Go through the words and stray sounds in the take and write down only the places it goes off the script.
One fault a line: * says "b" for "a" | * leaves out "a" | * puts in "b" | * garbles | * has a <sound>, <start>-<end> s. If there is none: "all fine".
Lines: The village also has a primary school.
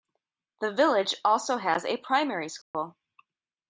* has a dropout, 2.6-2.7 s